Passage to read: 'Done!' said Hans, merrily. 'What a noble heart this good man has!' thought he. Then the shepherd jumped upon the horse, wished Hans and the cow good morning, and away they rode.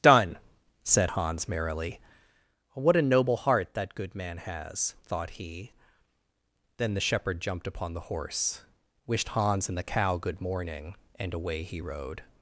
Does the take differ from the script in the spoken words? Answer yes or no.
yes